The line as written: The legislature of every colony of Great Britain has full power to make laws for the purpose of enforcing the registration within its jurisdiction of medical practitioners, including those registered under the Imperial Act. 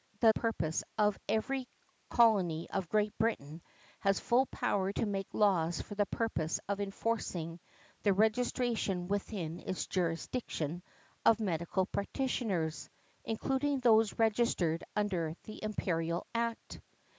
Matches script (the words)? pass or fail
fail